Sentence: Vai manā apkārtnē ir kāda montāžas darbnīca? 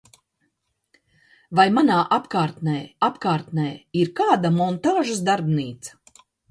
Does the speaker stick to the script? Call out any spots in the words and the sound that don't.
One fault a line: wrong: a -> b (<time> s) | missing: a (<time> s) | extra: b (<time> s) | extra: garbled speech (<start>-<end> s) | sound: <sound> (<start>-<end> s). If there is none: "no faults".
extra: apkārtnē (3.1 s)